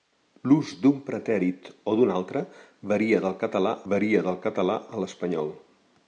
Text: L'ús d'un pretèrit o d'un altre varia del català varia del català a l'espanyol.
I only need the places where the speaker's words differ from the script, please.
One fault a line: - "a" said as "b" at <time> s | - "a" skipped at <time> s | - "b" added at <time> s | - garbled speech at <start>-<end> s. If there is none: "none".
none